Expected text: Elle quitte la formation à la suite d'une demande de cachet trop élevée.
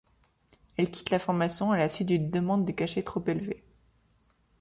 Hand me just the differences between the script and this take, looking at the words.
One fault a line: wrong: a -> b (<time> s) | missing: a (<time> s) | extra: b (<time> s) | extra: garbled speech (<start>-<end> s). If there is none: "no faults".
no faults